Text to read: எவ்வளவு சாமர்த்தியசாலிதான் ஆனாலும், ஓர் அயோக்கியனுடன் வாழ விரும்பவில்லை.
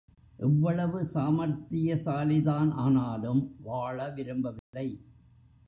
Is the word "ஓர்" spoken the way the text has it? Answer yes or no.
no